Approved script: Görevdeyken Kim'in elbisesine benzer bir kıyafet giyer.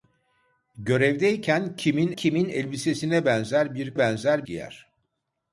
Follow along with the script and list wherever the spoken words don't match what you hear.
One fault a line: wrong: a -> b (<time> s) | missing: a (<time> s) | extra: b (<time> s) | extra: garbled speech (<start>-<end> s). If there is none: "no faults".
extra: Kim'in (2.1 s)
wrong: kıyafet -> benzer (4.0 s)